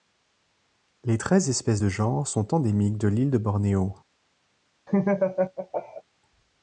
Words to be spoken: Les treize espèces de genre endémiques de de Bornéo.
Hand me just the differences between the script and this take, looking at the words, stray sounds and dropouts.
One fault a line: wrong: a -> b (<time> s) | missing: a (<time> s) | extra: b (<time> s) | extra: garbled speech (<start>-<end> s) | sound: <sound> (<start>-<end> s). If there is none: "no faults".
extra: sont (2.3 s)
extra: l'île (3.1 s)
sound: laugh (4.9-6.0 s)